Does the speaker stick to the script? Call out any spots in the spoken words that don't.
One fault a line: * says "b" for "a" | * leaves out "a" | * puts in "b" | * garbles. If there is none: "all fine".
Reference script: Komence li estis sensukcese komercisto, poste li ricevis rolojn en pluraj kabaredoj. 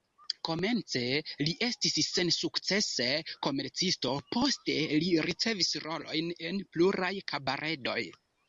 all fine